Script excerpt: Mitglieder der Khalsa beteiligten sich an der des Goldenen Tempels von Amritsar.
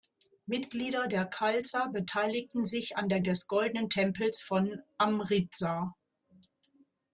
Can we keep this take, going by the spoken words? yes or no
yes